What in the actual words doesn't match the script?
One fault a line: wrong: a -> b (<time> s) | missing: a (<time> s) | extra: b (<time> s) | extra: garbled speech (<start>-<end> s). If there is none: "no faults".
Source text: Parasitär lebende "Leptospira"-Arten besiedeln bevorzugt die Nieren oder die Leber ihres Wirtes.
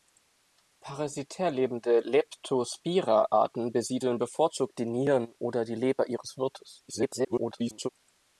extra: garbled speech (6.9-7.9 s)